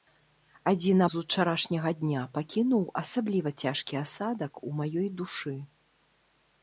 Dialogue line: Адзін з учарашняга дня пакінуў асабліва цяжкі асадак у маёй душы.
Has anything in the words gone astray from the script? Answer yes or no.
no